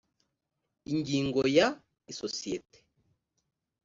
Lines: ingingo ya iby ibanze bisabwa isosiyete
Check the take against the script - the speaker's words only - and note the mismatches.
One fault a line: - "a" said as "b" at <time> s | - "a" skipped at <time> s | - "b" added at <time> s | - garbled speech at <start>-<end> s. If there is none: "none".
- "iby ibanze bisabwa" skipped at 1.7 s